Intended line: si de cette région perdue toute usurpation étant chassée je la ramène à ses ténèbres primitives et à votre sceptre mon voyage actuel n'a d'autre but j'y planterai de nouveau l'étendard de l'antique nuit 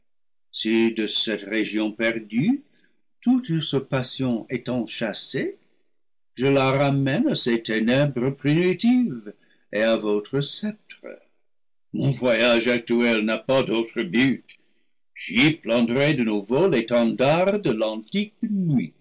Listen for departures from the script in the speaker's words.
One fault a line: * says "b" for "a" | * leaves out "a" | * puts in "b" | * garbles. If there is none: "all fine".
* puts in "pas"